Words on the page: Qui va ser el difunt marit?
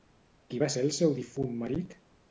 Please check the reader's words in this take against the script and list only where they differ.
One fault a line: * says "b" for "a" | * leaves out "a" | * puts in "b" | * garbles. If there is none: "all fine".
* puts in "seu"